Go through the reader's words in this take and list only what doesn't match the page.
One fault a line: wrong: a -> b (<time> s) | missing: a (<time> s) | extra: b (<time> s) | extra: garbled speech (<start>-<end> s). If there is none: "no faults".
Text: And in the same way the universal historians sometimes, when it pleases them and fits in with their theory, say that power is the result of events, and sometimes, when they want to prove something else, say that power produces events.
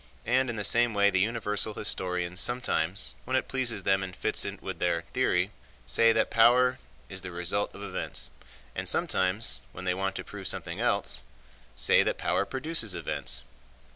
no faults